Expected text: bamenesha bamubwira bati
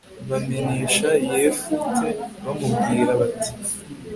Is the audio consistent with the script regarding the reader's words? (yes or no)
no